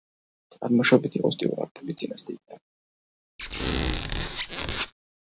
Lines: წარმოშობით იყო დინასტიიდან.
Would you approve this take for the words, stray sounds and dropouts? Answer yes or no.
no